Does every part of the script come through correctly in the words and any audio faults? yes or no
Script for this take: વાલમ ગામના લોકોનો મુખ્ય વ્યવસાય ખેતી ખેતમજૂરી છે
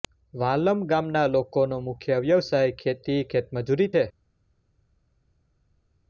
yes